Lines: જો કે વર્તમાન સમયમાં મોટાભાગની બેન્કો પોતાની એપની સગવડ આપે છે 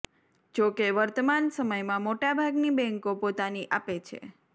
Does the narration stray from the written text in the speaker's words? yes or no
yes